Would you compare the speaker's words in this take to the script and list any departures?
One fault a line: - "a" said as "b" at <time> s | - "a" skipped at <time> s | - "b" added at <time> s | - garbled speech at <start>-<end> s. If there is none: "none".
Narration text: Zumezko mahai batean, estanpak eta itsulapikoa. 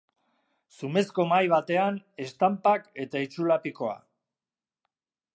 none